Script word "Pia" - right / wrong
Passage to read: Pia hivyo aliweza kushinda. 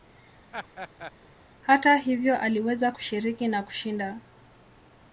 wrong